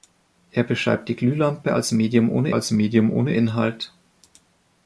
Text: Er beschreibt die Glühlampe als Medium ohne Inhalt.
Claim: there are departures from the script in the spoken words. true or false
true